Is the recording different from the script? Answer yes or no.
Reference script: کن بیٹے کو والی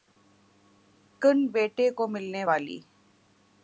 yes